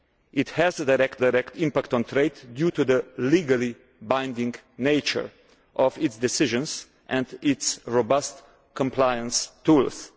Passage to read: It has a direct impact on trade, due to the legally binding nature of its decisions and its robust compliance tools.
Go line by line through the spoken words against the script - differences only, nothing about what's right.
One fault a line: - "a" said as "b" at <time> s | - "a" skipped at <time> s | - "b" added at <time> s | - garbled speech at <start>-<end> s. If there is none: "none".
- "direct" added at 1.2 s